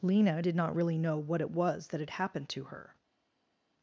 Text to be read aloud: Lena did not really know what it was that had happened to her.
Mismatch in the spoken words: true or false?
false